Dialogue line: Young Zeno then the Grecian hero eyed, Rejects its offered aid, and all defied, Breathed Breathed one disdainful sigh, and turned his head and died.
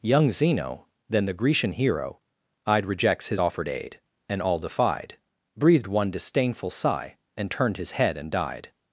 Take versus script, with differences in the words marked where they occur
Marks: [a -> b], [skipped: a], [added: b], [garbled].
Young Zeno then the Grecian hero eyed, Rejects [its -> his] offered aid, and all defied, Breathed [skipped: Breathed] one disdainful sigh, and turned his head and died.